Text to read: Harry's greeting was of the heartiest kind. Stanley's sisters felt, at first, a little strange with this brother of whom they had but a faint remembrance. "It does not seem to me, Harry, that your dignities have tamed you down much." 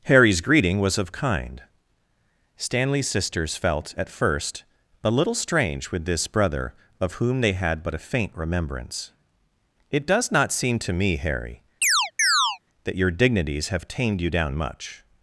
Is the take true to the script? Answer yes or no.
no